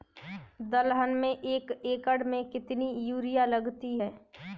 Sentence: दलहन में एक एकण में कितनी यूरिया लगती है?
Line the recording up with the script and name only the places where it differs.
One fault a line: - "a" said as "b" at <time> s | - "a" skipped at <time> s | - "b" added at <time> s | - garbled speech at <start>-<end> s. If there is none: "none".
none